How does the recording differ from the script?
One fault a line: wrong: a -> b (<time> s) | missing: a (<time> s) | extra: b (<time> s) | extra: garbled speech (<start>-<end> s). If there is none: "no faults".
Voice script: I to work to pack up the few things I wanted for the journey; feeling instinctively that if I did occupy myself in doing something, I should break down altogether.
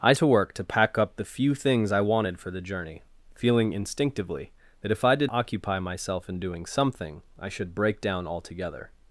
no faults